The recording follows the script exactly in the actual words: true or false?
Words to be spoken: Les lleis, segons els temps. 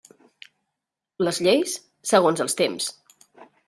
true